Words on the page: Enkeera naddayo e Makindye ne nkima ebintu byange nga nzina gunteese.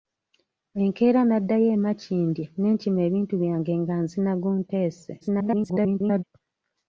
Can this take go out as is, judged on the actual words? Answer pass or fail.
fail